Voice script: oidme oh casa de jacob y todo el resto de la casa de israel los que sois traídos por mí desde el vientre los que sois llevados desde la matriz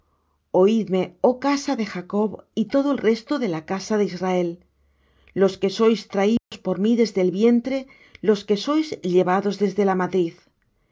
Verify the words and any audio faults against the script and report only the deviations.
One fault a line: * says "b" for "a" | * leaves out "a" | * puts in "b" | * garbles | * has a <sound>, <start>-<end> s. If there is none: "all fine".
* has a dropout, 6.4-6.5 s